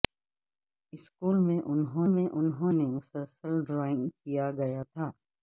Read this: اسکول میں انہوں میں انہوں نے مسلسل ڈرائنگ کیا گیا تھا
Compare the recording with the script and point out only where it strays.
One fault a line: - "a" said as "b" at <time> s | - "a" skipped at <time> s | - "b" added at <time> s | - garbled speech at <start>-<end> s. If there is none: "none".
none